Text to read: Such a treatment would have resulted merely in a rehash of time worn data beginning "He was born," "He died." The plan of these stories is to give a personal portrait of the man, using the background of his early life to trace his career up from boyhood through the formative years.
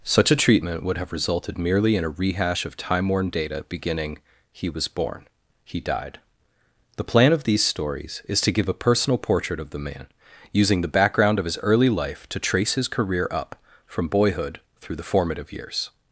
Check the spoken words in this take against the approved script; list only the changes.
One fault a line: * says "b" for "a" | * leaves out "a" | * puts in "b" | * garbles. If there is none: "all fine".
all fine